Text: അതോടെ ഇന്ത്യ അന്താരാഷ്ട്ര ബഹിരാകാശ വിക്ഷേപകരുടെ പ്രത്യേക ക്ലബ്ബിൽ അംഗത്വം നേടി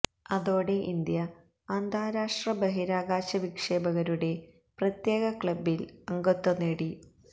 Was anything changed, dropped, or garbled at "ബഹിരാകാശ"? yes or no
no